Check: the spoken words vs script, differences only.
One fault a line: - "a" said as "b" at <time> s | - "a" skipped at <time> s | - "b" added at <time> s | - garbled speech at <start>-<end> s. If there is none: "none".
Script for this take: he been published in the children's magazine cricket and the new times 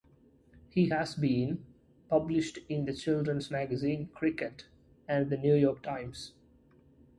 - "has" added at 0.9 s
- "york" added at 5.5 s